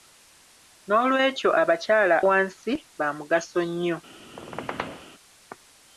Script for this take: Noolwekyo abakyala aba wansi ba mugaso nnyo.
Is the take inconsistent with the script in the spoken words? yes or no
yes